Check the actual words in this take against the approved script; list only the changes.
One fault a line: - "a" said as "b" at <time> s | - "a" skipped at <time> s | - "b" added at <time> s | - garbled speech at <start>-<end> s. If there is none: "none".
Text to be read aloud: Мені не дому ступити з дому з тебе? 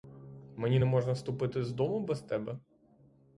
- "дому" said as "можна" at 0.8 s
- "з" said as "без" at 2.0 s